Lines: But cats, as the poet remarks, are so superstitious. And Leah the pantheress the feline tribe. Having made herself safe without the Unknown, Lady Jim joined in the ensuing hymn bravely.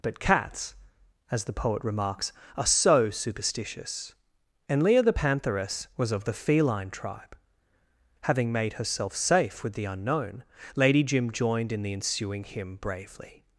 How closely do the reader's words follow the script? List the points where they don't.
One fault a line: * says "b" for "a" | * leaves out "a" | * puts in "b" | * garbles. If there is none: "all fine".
* puts in "was of"
* says "with" for "without"